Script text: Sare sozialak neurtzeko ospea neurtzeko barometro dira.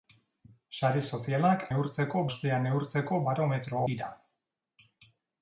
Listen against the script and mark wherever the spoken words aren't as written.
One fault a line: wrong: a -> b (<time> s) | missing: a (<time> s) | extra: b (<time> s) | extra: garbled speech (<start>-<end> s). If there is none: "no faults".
no faults